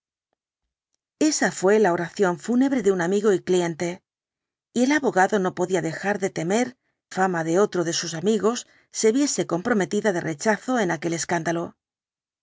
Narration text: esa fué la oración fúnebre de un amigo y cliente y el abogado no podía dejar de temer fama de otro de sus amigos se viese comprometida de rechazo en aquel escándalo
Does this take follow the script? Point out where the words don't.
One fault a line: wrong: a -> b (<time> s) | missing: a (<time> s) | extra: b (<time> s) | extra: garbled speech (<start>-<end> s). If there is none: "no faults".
no faults